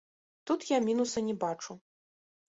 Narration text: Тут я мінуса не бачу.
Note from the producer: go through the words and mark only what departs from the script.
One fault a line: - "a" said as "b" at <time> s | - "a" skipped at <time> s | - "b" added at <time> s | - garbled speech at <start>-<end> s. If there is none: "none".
none